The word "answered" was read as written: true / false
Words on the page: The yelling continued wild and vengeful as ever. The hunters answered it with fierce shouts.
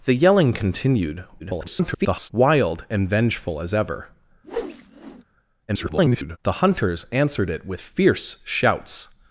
true